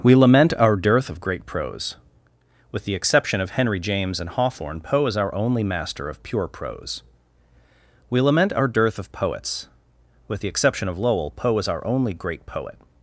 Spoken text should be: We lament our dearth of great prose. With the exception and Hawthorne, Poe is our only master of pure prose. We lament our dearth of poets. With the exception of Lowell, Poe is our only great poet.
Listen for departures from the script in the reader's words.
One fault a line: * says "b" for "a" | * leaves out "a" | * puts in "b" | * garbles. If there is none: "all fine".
* puts in "of Henry James"